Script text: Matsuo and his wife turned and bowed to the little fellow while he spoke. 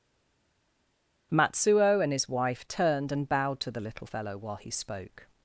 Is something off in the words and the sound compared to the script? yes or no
no